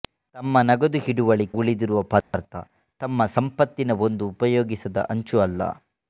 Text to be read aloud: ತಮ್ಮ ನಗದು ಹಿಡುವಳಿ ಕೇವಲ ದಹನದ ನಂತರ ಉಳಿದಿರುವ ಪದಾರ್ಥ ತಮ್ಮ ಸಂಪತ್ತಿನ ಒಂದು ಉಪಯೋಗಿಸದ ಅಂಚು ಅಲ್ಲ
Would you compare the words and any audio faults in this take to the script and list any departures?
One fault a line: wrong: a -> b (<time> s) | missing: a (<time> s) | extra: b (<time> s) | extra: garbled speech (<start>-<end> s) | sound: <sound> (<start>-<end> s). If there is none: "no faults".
missing: ಕೇವಲ ದಹನದ ನಂತರ (1.4 s)
sound: dropout (2.2-2.3 s)